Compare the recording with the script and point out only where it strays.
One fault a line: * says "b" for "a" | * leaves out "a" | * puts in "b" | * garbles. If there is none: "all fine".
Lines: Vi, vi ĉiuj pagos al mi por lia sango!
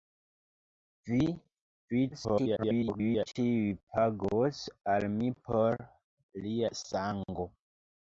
* garbles